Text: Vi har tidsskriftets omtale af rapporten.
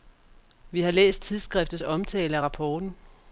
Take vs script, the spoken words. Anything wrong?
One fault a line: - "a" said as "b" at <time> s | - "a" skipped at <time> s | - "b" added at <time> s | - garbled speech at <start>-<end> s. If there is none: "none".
- "læst" added at 0.9 s